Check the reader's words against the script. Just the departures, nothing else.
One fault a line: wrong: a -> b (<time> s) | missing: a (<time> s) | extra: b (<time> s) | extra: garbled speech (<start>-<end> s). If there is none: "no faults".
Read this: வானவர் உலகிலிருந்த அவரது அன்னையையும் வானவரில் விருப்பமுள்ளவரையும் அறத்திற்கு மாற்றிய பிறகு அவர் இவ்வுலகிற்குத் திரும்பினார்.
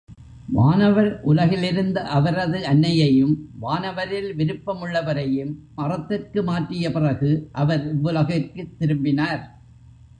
no faults